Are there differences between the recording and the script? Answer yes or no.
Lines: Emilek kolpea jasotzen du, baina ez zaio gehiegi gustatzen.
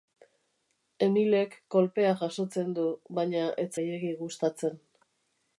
yes